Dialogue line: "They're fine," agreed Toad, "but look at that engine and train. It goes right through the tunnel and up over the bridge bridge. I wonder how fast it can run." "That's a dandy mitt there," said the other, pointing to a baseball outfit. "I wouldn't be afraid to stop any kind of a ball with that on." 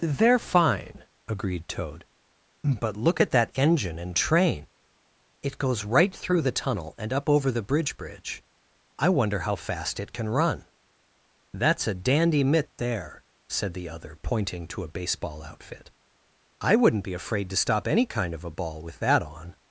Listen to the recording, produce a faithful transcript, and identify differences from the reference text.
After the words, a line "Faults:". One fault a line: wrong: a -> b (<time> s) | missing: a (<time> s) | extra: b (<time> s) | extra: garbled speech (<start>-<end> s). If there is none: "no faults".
"They're fine," agreed Toad, "but look at that engine and train. It goes right through the tunnel and up over the bridge bridge. I wonder how fast it can run." "That's a dandy mitt there," said the other, pointing to a baseball outfit. "I wouldn't be afraid to stop any kind of a ball with that on."
Faults:
no faults